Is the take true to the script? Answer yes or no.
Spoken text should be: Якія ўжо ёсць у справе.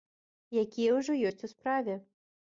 yes